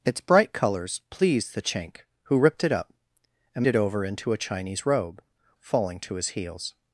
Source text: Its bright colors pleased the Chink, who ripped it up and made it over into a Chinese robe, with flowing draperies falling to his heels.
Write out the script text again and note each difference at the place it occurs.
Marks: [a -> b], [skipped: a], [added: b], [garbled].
Its bright colors pleased the Chink, who ripped it up and [skipped: made] it over into a Chinese robe, [skipped: with flowing draperies] falling to his heels.